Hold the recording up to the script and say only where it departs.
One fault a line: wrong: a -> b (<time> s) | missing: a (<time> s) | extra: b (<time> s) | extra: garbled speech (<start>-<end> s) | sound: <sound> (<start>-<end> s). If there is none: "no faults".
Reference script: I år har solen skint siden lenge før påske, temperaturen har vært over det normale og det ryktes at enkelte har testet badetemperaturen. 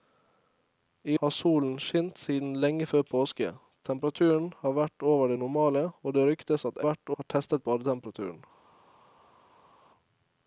missing: år (1.2 s)
wrong: enkelte -> vært (6.9 s)